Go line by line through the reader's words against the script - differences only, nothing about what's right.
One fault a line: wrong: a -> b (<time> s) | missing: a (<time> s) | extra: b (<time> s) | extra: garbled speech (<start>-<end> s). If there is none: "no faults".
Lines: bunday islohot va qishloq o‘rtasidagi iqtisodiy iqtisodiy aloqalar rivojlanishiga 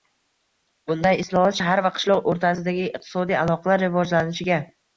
extra: shahar (1.6 s)
missing: iqtisodiy (3.4 s)